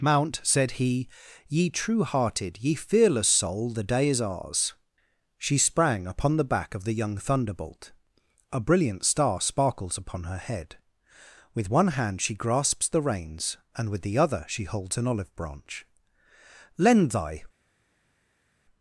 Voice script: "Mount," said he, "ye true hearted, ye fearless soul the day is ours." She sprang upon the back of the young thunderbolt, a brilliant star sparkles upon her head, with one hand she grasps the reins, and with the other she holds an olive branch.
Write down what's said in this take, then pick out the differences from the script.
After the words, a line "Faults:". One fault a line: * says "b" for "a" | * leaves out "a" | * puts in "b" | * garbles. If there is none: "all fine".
"Mount," said he, "ye true hearted, ye fearless soul the day is ours." She sprang upon the back of the young thunderbolt, a brilliant star sparkles upon her head, with one hand she grasps the reins, and with the other she holds an olive branch. "Lend thy
Faults:
* puts in "Lend thy"